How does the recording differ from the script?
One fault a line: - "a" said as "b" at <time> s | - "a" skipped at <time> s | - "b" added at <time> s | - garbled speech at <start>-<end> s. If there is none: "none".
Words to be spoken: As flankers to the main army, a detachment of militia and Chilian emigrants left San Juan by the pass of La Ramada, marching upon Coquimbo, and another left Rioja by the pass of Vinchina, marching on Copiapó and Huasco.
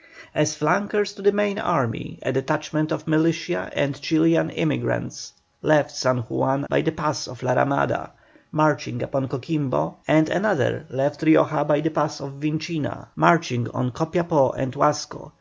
none